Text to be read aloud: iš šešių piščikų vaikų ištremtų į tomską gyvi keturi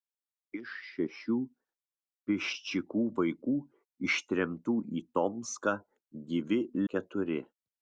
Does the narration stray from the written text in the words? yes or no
no